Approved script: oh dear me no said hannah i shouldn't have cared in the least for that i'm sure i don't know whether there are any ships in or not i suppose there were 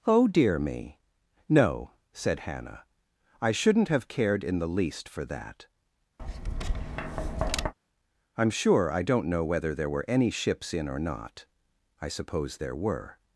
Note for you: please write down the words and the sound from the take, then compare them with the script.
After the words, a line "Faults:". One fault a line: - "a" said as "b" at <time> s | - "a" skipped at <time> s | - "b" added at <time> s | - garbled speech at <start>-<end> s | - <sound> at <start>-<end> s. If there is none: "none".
oh dear me no said hannah i shouldn't have cared in the least for that i'm sure i don't know whether there were any ships in or not i suppose there were
Faults:
- tap at 6.2-7.7 s
- "are" said as "were" at 9.9 s